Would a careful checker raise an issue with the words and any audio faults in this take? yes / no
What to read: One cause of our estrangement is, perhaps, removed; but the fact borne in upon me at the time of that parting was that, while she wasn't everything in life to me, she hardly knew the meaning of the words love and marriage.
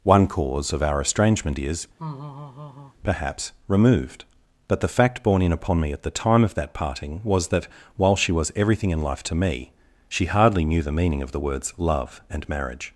yes